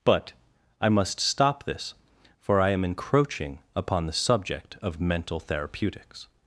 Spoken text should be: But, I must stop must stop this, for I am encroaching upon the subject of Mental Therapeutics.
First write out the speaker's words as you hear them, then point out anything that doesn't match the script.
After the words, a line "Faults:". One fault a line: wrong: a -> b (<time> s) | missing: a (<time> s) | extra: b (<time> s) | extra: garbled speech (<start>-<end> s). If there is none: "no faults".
But, I must stop this, for I am encroaching upon the subject of Mental Therapeutics.
Faults:
missing: must stop (1.6 s)